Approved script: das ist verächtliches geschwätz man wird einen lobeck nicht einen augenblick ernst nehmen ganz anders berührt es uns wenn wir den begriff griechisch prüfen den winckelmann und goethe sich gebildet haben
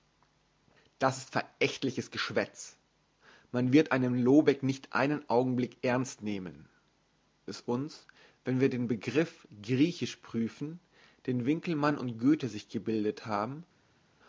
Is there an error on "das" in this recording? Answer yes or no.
no